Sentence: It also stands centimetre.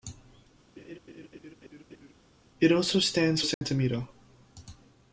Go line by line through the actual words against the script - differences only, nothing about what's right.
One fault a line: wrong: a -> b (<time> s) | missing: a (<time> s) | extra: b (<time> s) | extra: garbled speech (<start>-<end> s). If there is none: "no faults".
no faults